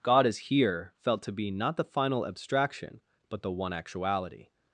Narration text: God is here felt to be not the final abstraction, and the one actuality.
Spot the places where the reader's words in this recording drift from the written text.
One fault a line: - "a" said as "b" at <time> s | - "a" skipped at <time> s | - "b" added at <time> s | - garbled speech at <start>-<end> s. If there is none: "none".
- "and" said as "but" at 3.3 s